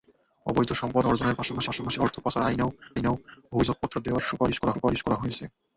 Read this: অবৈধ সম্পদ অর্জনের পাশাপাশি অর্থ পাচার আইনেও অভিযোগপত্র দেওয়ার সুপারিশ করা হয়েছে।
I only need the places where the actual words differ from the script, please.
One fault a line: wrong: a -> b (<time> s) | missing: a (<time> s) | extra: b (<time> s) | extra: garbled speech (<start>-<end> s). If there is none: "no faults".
extra: পাশাপাশি (1.7 s)
extra: আইনেও (2.9 s)
extra: সুপারিশ করা (4.7 s)